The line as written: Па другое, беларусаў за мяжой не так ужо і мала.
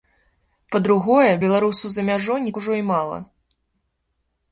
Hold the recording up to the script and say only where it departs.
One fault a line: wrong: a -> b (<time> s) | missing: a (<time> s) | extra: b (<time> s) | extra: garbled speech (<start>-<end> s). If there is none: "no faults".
missing: так (2.5 s)